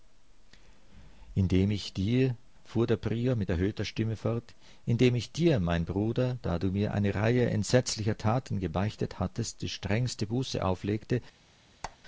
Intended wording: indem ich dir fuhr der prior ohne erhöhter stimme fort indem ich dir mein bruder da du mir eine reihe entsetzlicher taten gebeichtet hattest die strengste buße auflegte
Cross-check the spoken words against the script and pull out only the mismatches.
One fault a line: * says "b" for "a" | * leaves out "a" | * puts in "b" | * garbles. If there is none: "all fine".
* says "mit" for "ohne"